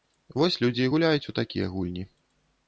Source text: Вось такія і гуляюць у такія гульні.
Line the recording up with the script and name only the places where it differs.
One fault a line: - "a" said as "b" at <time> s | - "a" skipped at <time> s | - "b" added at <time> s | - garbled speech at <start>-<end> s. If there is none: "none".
- "такія" said as "людзі" at 0.6 s